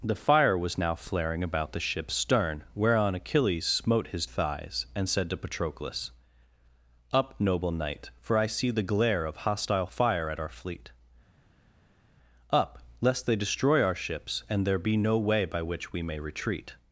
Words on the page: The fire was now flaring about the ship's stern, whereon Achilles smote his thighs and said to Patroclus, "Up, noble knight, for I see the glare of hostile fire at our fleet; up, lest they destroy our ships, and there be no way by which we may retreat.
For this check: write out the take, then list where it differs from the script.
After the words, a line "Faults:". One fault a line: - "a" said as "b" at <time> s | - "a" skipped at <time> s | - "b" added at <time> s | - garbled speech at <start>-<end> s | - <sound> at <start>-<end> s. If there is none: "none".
The fire was now flaring about the ship's stern, whereon Achilles smote his thighs and said to Patroclus, "Up, noble knight, for I see the glare of hostile fire at our fleet; up, lest they destroy our ships, and there be no way by which we may retreat.
Faults:
none